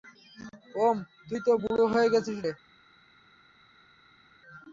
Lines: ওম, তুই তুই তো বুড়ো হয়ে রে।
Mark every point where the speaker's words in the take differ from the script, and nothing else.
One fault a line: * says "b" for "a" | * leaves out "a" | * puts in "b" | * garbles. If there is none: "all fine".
* leaves out "তুই"
* puts in "গেছিস"